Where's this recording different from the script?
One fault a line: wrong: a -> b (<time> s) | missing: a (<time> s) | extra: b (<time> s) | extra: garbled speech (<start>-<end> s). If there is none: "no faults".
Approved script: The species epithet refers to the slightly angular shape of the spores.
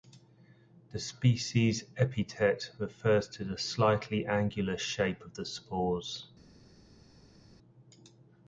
no faults